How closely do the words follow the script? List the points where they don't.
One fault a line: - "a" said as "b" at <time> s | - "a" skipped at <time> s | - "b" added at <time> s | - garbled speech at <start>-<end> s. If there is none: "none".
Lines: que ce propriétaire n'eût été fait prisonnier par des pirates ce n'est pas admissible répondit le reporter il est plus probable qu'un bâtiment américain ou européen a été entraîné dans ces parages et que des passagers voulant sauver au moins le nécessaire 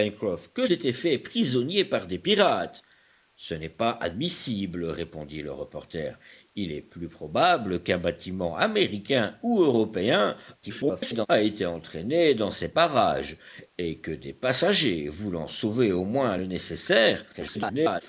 - "ce propriétaire n'eût" skipped at 0.7 s
- garbled speech at 10.6-11.3 s
- garbled speech at 17.3-18.0 s